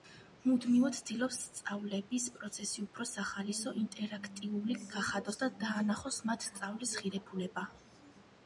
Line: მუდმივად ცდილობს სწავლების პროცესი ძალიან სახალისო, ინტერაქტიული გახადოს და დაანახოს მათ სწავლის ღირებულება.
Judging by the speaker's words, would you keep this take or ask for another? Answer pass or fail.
fail